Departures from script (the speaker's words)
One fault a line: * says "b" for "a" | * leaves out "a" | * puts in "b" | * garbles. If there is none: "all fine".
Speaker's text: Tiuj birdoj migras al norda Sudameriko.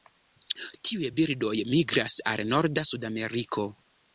all fine